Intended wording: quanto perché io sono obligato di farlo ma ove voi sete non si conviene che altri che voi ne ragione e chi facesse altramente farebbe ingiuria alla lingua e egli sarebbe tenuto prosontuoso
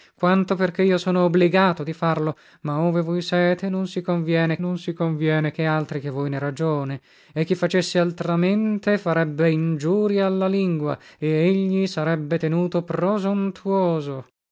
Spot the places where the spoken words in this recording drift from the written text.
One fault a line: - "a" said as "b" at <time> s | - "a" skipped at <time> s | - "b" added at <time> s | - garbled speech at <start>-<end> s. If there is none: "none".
- "non si conviene" added at 4.6 s